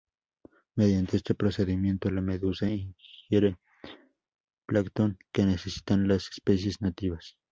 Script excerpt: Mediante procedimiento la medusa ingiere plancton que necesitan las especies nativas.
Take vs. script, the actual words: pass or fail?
fail